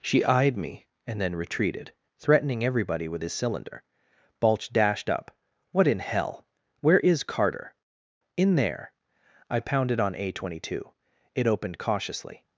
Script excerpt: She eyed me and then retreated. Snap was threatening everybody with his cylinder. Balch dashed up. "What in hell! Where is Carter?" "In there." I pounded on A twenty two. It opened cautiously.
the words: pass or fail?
fail